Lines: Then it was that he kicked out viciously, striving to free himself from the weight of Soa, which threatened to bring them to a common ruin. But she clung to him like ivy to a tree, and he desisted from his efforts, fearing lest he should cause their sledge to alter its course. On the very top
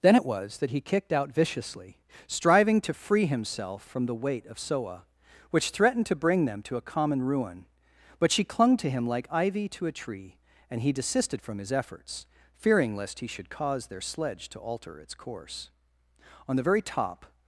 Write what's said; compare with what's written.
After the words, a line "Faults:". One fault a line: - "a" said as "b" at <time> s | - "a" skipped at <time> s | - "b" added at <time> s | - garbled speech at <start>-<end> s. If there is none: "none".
Then it was that he kicked out viciously, striving to free himself from the weight of Soa, which threatened to bring them to a common ruin. But she clung to him like ivy to a tree, and he desisted from his efforts, fearing lest he should cause their sledge to alter its course. On the very top
Faults:
none